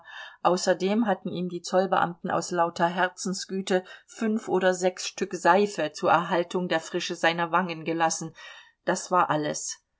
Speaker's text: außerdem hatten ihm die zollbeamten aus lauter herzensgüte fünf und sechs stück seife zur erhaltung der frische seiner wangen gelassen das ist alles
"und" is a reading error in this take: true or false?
true